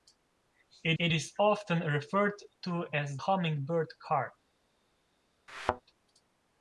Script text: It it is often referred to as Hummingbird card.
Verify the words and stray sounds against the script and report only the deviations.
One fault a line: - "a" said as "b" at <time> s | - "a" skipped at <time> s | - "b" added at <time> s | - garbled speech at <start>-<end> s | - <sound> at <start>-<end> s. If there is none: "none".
- thud at 5.5-5.8 s